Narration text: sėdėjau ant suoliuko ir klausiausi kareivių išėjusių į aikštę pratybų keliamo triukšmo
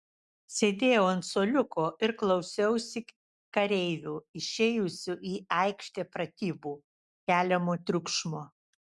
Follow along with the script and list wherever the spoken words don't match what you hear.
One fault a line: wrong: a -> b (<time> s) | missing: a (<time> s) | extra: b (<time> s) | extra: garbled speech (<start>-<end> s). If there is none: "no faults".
no faults